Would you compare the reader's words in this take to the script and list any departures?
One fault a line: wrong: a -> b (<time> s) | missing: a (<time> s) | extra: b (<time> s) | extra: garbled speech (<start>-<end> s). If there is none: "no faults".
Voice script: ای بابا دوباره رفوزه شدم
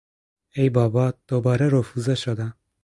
no faults